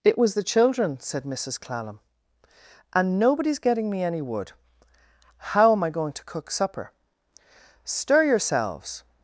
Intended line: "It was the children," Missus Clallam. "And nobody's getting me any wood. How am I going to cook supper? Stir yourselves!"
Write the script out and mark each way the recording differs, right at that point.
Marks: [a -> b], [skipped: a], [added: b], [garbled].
"It was the children," [added: said] Missus Clallam. "And nobody's getting me any wood. How am I going to cook supper? Stir yourselves!"